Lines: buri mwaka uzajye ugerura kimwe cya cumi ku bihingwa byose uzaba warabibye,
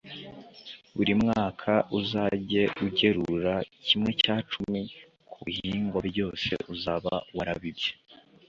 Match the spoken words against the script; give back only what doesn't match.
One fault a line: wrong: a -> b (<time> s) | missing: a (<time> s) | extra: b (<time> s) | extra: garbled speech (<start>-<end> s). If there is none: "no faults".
no faults